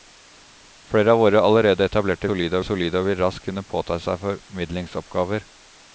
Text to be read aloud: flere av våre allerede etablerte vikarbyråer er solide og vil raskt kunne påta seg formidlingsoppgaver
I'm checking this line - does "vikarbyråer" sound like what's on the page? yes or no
no